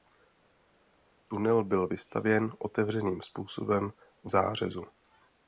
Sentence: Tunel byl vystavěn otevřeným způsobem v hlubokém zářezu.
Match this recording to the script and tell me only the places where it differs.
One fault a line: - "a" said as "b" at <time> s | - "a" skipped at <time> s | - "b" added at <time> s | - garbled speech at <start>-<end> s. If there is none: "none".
- "hlubokém" skipped at 4.3 s